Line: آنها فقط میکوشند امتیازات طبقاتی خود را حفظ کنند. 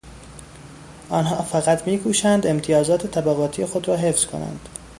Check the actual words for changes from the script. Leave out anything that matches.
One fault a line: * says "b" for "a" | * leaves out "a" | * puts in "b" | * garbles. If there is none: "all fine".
all fine